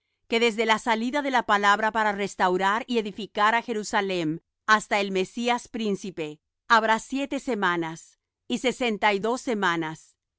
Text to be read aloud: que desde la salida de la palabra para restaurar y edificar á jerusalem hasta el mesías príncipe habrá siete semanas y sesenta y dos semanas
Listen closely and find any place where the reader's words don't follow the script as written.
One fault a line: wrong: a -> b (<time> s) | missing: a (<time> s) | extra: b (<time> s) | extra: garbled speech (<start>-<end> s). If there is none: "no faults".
no faults